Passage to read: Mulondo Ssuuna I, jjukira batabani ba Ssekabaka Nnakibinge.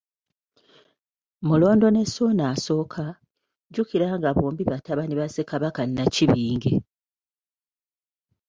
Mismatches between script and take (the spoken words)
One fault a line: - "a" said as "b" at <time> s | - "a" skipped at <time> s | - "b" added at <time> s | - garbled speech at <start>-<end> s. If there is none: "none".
- "ne" added at 1.9 s
- "nga bombi" added at 4.2 s